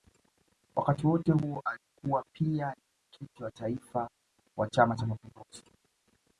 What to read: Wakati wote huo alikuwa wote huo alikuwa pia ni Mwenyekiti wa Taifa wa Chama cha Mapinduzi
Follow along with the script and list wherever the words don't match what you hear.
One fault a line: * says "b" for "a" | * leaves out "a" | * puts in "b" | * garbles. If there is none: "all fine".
* leaves out "wote huo alikuwa"